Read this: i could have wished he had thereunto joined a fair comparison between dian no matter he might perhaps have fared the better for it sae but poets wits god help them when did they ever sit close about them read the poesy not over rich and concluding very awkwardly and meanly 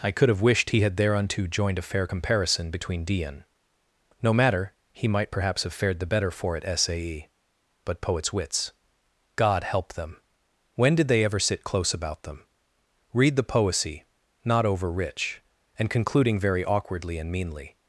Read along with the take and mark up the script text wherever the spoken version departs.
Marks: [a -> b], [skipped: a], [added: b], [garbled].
i could have wished he had thereunto joined a fair comparison between dian no matter he might perhaps have fared the better for it sae but poets wits god help them when did they ever sit close about them read the poesy not over rich and concluding very awkwardly and meanly